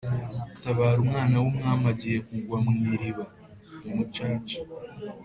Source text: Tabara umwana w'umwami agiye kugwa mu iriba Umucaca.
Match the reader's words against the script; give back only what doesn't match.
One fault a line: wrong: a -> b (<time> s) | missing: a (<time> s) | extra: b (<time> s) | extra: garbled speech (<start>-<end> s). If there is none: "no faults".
no faults